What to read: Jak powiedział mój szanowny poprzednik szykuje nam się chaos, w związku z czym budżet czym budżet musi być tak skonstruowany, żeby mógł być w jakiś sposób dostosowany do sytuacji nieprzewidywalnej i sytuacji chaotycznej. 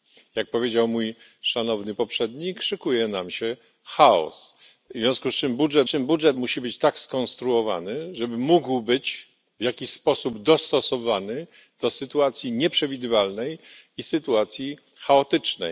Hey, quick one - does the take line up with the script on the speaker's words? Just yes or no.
yes